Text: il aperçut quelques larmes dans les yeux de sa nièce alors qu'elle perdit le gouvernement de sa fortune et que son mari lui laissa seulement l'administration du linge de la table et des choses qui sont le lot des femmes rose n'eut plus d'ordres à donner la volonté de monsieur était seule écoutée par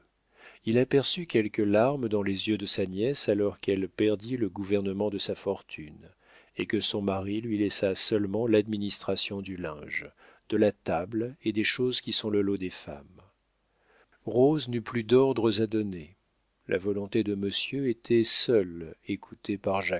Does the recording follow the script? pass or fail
pass